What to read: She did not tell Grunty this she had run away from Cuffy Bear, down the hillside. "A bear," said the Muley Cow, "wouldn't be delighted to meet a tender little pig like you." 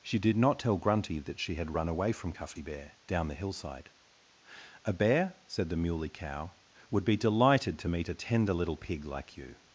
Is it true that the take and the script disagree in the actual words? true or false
true